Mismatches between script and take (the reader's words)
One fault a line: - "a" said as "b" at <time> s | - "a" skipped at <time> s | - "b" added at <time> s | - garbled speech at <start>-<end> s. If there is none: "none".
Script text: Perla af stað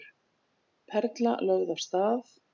- "lögð" added at 1.5 s